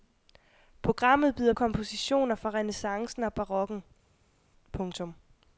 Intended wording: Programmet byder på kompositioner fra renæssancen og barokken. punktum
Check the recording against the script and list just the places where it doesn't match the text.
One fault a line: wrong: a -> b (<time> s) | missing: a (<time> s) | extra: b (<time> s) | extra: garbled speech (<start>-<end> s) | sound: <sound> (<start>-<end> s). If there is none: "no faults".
missing: på (1.5 s)